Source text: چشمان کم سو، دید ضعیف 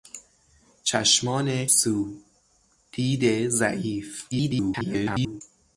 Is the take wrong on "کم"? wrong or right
wrong